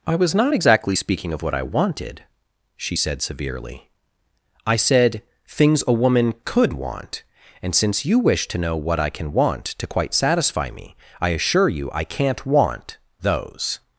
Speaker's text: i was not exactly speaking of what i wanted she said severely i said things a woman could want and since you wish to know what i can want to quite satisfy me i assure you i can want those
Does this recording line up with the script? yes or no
no